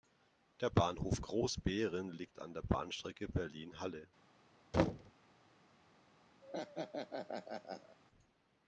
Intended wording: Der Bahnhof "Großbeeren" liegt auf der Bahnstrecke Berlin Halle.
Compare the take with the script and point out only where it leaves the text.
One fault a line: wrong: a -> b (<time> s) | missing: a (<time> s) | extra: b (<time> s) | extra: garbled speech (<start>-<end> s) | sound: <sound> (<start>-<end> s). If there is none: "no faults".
wrong: auf -> an (2.4 s)
sound: thud (4.7-5.1 s)
sound: laugh (6.4-8.0 s)